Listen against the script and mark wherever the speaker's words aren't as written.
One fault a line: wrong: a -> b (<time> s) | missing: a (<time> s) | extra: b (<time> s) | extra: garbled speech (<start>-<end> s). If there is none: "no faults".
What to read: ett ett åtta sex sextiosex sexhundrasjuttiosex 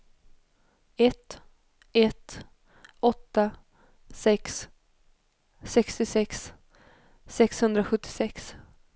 no faults